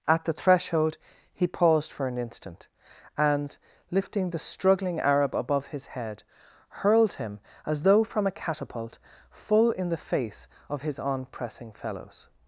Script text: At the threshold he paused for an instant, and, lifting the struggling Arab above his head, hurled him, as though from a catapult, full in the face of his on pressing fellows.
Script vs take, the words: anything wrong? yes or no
no